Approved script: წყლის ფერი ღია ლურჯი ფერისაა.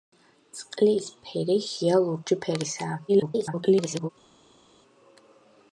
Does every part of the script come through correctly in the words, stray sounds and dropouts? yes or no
no